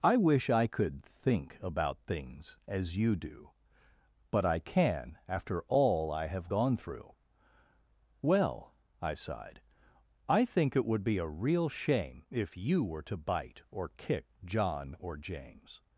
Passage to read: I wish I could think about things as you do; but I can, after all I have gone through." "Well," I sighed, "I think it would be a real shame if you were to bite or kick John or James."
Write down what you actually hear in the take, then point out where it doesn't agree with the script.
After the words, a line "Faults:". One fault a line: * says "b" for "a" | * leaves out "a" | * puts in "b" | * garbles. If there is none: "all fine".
I wish I could think about things as you do; but I can, after all I have gone through." "Well," I sighed, "I think it would be a real shame if you were to bite or kick John or James."
Faults:
all fine